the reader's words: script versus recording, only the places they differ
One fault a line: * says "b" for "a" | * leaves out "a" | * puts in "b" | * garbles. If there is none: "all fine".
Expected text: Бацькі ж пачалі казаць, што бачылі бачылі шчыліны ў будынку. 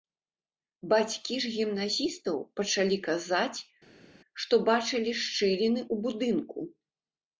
* puts in "гімназістаў"
* leaves out "бачылі"